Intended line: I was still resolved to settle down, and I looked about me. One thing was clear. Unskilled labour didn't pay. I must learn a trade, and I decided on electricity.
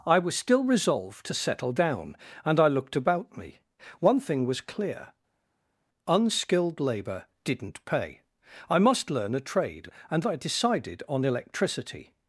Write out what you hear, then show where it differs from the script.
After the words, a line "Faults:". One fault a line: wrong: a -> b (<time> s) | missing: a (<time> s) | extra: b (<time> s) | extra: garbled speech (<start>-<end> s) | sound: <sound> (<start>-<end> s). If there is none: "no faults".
I was still resolved to settle down, and I looked about me. One thing was clear. Unskilled labour didn't pay. I must learn a trade, and I decided on electricity.
Faults:
no faults